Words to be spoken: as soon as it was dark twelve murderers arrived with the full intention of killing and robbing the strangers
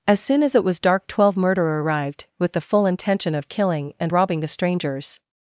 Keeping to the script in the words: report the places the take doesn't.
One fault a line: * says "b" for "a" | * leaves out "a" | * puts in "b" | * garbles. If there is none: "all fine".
* says "murderer" for "murderers"